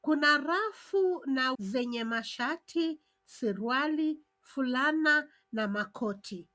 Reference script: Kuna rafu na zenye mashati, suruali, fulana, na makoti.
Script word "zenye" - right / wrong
right